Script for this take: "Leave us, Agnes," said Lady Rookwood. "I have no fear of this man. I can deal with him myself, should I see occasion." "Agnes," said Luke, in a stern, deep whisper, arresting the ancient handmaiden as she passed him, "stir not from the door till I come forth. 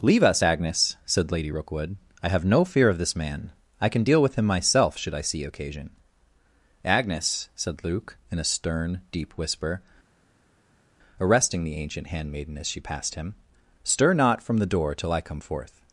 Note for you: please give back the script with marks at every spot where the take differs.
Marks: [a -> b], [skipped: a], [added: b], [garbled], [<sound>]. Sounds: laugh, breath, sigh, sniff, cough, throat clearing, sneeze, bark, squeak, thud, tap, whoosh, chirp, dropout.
"Leave us, Agnes," said Lady Rookwood. "I have no fear of this man. I can deal with him myself, should I see occasion." "Agnes," said Luke, in a stern, deep whisper, arresting the ancient handmaiden as she passed him, "stir not from the door till I come forth.